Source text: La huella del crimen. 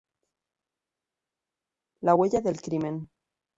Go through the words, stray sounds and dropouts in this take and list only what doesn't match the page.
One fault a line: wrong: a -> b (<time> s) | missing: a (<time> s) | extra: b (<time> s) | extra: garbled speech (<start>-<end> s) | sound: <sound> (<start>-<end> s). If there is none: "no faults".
no faults